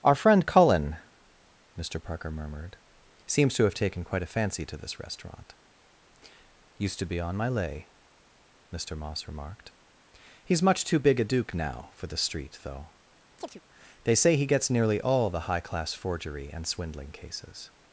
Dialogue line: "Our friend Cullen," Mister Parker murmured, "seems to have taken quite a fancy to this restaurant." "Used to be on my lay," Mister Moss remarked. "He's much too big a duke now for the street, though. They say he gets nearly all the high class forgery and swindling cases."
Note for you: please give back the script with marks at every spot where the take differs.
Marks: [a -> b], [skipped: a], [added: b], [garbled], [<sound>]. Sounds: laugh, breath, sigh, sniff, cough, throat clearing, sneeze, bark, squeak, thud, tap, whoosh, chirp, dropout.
"Our friend Cullen," Mister Parker murmured, "seems to have taken quite a fancy to this restaurant." "Used to be on my lay," Mister Moss remarked. "He's much too big a duke now for the street, though. [chirp] They say he gets nearly all the high class forgery and swindling cases."